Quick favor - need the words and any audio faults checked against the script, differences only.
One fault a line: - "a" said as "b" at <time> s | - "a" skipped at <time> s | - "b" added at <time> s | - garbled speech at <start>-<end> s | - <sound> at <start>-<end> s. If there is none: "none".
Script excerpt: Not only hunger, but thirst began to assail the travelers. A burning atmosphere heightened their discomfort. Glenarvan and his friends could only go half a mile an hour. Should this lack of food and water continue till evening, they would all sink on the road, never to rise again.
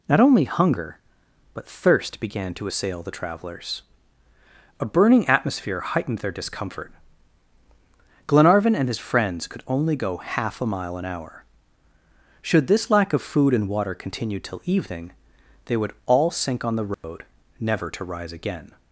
- dropout at 16.9-17.0 s